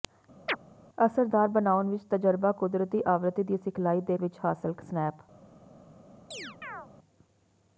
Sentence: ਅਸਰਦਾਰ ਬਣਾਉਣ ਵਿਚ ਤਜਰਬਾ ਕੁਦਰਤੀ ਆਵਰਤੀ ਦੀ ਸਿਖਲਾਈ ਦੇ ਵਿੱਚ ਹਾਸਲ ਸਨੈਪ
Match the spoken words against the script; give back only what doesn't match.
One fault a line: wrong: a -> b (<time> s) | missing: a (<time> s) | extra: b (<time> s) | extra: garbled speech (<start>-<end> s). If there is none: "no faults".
no faults